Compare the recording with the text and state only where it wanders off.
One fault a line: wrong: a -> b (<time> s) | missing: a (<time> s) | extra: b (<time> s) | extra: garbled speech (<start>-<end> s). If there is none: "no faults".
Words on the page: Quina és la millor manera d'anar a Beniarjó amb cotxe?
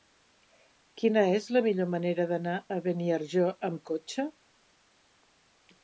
no faults